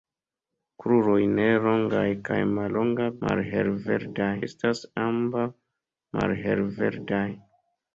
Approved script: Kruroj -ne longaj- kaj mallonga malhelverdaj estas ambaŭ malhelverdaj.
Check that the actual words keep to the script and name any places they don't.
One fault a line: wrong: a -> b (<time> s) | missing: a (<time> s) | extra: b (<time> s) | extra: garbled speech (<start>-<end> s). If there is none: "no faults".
no faults